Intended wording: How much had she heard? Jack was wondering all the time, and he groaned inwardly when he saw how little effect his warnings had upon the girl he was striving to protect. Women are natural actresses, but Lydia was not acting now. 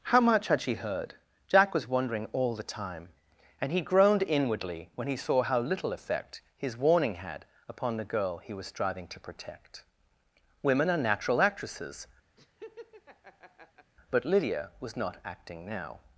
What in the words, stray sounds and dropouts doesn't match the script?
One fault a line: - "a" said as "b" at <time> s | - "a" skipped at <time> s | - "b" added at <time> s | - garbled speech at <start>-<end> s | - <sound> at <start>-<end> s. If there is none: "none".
- "warnings" said as "warning" at 6.8 s
- laugh at 12.4-13.9 s